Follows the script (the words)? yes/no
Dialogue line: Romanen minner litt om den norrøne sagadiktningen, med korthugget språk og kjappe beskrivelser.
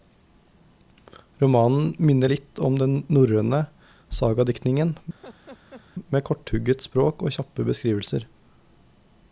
yes